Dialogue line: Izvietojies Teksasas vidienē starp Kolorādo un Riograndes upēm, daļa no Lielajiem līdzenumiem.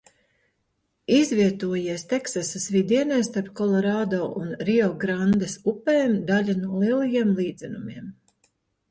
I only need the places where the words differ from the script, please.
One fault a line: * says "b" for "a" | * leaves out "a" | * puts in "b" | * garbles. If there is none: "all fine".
all fine